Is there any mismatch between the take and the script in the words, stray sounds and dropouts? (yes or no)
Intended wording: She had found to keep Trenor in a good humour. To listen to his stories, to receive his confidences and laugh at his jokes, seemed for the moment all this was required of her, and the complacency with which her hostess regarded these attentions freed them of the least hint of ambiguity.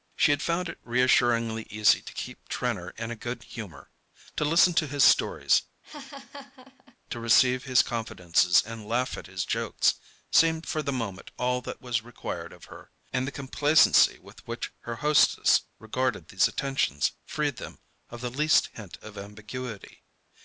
yes